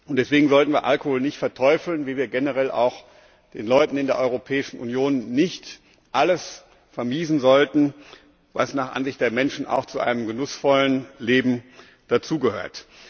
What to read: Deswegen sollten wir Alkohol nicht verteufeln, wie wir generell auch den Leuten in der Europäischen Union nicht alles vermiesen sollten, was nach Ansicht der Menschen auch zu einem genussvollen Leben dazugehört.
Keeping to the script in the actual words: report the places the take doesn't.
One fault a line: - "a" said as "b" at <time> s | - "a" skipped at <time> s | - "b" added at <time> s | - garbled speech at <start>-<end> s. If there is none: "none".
none